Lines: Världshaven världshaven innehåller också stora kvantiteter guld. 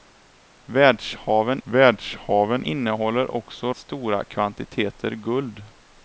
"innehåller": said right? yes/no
yes